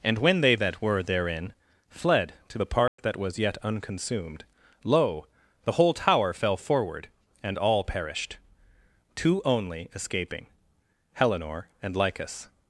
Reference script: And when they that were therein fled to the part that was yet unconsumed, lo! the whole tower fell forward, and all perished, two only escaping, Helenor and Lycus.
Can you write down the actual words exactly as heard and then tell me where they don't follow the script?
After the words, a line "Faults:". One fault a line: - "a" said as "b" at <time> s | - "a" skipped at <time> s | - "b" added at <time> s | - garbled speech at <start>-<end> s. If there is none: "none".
And when they that were therein fled to the part that was yet unconsumed, lo! the whole tower fell forward, and all perished, two only escaping, Helenor and Lycus.
Faults:
none